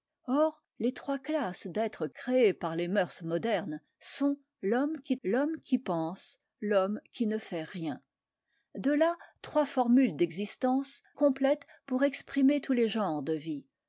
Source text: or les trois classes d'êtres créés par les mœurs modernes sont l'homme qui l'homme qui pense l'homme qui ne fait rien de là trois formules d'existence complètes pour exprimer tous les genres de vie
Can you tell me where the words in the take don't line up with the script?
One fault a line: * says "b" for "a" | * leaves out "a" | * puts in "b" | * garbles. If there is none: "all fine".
all fine